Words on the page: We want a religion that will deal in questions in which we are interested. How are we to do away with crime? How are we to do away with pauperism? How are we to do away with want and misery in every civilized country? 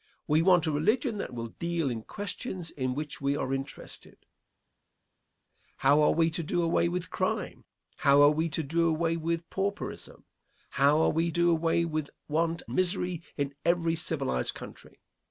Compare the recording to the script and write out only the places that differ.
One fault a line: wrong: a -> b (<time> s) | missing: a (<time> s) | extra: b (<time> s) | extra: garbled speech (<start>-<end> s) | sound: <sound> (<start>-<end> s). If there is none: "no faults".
missing: to (11.3 s)
missing: and (12.6 s)